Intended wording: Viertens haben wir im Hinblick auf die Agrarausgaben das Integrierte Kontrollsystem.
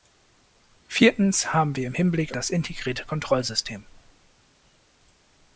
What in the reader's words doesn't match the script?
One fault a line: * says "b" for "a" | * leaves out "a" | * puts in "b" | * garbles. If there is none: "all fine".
* leaves out "auf die Agrarausgaben"